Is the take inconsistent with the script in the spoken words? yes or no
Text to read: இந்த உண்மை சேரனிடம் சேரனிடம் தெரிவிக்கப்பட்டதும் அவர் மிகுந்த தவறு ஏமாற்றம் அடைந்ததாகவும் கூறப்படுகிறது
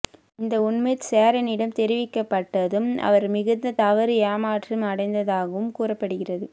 yes